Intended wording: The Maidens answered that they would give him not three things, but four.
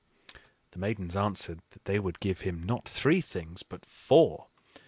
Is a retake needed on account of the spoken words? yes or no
no